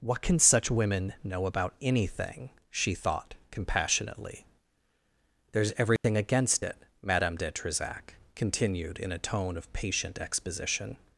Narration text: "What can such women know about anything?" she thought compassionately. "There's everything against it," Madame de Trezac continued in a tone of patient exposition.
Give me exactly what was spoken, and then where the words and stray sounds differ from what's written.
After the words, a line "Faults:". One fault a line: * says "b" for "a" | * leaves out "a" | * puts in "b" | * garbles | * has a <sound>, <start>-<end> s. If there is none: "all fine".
"What can such women know about anything?" she thought compassionately. "There's everything against it," Madame de Trezac continued in a tone of patient exposition.
Faults:
* has a dropout, 6.0-6.0 s